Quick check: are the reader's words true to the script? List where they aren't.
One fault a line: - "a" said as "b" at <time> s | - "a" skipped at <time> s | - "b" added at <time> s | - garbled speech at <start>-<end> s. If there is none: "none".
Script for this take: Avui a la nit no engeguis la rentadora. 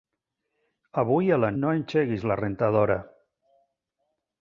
- "nit" skipped at 1.5 s